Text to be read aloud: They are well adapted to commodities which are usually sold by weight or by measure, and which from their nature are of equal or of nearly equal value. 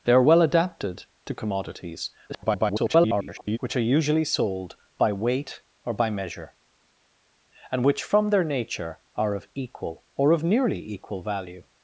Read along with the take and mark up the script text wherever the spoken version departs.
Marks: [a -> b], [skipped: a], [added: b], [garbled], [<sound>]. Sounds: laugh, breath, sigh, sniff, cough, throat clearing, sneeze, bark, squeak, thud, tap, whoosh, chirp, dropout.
They are well adapted to commodities [garbled] which are usually sold by weight or by measure, and which from their nature are of equal or of nearly equal value.